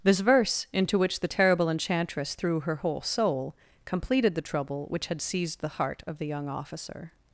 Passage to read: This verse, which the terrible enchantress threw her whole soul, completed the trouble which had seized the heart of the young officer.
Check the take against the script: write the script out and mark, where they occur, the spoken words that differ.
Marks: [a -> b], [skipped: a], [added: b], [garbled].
This verse, [added: into] which the terrible enchantress threw her whole soul, completed the trouble which had seized the heart of the young officer.